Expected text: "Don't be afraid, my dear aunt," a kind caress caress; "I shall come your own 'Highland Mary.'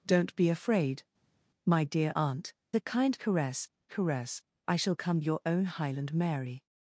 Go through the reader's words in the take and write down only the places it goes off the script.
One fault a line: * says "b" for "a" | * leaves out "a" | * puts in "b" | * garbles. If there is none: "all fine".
all fine